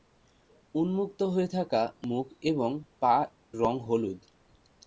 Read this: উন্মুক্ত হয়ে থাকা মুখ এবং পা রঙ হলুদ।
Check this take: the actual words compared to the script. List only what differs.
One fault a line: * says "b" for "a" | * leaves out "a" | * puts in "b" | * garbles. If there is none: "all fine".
all fine